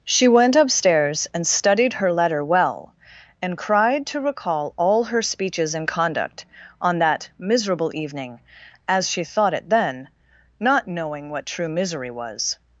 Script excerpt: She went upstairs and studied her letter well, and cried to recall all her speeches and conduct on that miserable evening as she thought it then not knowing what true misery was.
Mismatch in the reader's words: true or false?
false